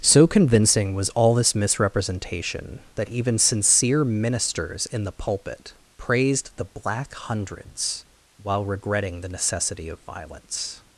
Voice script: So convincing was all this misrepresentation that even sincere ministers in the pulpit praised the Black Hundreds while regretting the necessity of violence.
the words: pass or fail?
pass